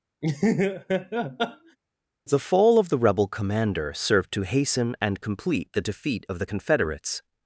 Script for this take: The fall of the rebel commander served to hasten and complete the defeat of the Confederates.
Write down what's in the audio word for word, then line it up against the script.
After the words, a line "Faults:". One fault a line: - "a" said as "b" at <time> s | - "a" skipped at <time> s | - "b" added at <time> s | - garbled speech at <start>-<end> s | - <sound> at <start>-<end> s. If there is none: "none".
The fall of the rebel commander served to hasten and complete the defeat of the Confederates.
Faults:
- laugh at 0.2-1.8 s